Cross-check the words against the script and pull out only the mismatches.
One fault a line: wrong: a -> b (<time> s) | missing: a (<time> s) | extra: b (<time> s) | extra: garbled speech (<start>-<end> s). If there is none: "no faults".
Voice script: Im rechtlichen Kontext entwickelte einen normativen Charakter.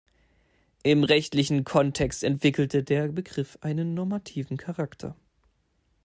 extra: der Begriff (2.8 s)